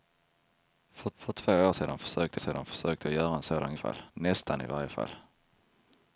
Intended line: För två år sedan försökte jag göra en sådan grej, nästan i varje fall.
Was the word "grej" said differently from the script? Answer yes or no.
yes